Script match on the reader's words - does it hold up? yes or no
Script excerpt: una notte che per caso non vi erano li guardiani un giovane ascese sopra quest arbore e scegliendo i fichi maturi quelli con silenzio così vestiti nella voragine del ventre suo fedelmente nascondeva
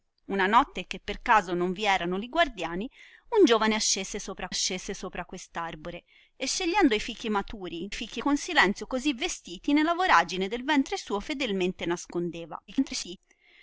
no